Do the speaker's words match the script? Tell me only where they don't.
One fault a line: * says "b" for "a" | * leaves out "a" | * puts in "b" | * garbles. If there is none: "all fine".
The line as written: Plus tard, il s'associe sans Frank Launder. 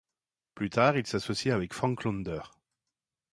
* says "avec" for "sans"